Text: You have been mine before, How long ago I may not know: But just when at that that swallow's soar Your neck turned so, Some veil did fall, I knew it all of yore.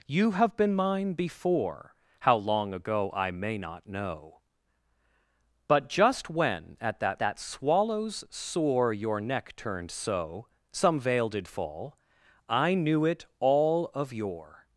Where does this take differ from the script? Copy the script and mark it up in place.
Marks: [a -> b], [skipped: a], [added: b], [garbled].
You have been mine before, How long ago I may not know: But just when at that that swallow's soar Your neck turned so, Some veil did fall, I knew it all of yore.